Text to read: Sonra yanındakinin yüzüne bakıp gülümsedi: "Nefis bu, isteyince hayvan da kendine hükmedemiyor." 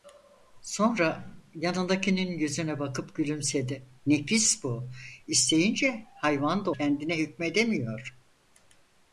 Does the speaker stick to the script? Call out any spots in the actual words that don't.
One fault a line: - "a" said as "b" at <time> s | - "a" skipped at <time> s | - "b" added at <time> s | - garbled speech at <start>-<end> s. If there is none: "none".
none